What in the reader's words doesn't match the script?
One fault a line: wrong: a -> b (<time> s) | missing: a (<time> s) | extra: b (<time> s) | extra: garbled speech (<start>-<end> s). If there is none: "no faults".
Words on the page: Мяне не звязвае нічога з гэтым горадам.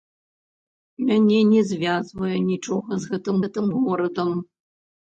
extra: гэтым (3.5 s)